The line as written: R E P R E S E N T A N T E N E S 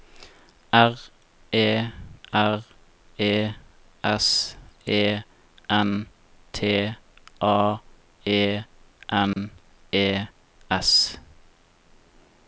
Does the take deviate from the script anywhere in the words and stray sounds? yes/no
yes